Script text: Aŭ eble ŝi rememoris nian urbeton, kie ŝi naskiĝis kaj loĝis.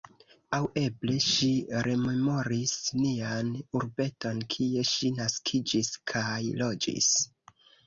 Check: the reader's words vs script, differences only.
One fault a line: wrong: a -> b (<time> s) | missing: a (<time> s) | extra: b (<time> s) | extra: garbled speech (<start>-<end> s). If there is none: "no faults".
no faults